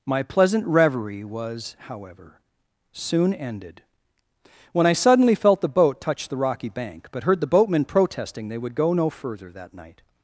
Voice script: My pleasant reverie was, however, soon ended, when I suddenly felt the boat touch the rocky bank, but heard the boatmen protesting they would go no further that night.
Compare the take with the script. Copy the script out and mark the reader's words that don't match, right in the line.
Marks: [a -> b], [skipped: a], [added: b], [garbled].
My pleasant reverie was, however, soon ended, when I suddenly felt the boat touch the rocky bank, but heard the boatmen protesting they would go no further that night.